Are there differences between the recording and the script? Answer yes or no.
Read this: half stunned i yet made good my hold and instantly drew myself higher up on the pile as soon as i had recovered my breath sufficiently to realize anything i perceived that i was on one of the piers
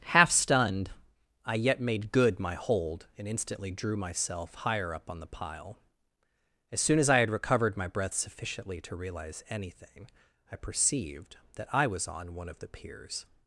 no